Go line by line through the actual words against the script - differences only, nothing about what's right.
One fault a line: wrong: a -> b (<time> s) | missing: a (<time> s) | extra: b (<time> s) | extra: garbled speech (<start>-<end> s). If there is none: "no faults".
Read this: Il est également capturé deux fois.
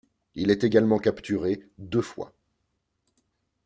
no faults